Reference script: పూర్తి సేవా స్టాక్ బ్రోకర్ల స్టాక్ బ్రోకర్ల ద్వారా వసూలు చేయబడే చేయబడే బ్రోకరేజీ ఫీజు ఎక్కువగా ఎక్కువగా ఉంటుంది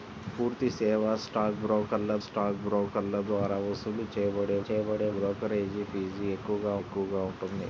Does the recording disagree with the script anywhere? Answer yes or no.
no